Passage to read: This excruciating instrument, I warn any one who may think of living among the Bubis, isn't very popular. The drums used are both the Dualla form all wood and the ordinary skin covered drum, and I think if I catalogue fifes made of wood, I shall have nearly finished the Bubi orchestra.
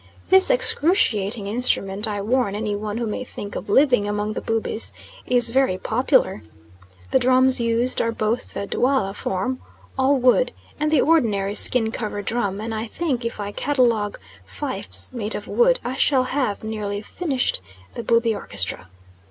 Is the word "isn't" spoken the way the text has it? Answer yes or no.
no